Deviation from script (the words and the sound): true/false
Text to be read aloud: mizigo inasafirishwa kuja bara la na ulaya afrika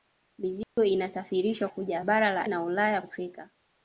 true